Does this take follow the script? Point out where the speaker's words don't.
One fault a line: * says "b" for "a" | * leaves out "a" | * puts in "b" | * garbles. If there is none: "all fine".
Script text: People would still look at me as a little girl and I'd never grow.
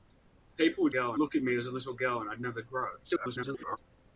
* says "girl" for "still"
* garbles